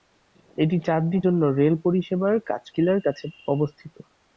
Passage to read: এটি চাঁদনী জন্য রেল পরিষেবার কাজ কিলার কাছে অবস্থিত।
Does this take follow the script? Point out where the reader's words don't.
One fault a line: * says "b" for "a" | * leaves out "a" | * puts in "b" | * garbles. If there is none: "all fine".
all fine